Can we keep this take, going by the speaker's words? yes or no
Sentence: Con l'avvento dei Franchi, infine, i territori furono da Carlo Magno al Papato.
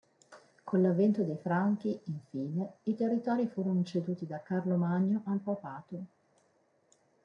no